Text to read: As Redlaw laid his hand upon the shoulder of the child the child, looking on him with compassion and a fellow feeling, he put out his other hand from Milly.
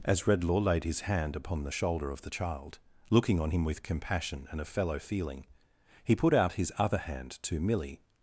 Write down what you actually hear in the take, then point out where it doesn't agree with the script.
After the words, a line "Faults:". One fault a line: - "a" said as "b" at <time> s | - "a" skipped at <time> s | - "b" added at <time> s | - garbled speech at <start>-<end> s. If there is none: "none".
As Redlaw laid his hand upon the shoulder of the child, looking on him with compassion and a fellow feeling, he put out his other hand to Milly.
Faults:
- "the child" skipped at 2.8 s
- "from" said as "to" at 7.4 s